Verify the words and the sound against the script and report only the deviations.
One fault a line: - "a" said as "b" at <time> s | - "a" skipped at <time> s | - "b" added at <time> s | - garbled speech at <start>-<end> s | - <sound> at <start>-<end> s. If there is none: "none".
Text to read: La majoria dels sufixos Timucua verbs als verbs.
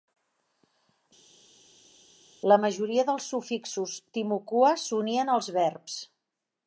- "verbs" said as "s'unien" at 4.9 s